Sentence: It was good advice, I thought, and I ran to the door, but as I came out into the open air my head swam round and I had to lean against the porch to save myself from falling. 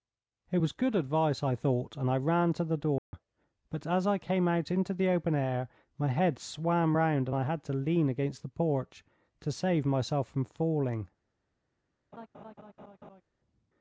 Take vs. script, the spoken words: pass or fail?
pass